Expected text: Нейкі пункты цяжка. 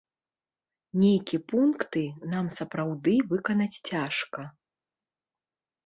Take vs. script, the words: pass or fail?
fail